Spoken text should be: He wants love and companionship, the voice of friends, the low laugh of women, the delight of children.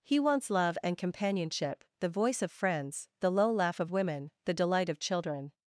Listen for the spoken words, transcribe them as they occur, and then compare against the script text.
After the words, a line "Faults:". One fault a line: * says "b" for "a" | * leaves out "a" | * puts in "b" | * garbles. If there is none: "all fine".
He wants love and companionship, the voice of friends, the low laugh of women, the delight of children.
Faults:
all fine